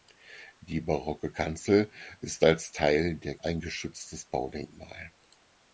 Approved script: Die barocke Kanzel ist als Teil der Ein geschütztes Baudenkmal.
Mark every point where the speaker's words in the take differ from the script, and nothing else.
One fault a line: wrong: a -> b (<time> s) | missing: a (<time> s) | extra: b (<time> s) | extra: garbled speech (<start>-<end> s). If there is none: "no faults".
no faults